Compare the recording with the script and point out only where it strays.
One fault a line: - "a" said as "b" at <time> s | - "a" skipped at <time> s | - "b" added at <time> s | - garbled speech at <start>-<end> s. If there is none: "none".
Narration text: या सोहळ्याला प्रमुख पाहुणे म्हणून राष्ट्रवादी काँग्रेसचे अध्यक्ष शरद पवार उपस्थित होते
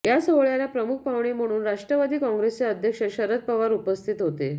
none